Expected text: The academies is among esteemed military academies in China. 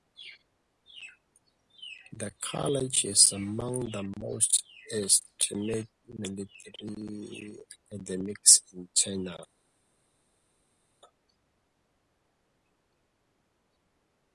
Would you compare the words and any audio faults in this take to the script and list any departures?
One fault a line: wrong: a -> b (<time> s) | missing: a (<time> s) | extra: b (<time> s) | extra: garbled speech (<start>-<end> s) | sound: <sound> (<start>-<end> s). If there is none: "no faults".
wrong: academies -> college (2.4 s)
extra: the most (3.9 s)